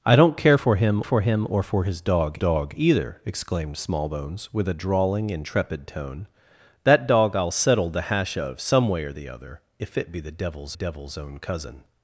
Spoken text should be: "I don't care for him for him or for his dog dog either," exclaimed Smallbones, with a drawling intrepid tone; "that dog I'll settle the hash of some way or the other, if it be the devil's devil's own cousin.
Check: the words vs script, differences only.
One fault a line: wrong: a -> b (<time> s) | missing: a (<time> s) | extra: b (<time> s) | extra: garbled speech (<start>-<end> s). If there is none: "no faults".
no faults